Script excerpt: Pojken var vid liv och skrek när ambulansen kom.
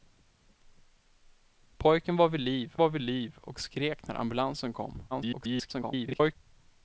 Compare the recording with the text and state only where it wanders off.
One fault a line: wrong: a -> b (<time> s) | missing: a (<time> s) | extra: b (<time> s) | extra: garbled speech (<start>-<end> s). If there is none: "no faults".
extra: var vid liv (2.8 s)
extra: garbled speech (5.1-6.4 s)